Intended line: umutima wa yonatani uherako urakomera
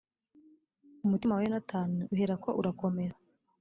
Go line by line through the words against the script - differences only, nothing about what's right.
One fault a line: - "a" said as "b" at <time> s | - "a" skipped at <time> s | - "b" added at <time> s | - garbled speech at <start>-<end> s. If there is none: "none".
none